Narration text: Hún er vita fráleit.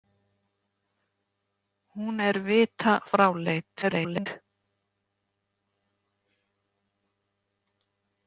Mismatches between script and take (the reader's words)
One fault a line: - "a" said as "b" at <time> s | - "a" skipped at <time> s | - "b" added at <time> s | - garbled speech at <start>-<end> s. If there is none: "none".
- garbled speech at 3.8-4.3 s